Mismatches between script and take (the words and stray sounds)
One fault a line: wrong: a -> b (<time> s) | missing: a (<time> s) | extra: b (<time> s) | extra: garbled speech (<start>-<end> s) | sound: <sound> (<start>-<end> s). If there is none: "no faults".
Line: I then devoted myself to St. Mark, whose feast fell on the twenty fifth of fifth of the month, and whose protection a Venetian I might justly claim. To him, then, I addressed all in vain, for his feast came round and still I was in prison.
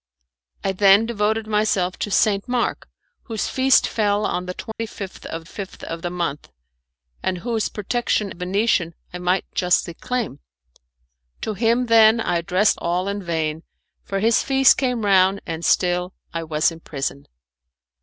sound: dropout (4.7-4.8 s)